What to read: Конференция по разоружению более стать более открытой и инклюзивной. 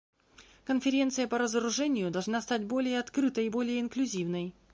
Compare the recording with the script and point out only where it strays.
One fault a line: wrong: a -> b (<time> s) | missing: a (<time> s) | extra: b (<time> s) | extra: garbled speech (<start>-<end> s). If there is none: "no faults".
wrong: более -> должна (2.1 s)
extra: более (3.5 s)